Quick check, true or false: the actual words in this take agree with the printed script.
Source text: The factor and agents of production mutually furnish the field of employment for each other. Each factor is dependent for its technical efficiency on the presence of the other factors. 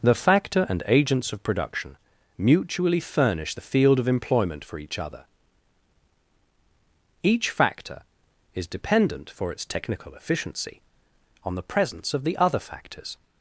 true